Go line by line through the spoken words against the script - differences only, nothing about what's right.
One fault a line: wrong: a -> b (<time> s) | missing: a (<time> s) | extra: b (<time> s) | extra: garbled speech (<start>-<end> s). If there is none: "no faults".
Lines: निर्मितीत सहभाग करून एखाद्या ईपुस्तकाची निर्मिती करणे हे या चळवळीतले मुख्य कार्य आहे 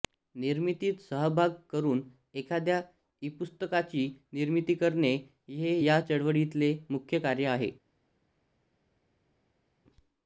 no faults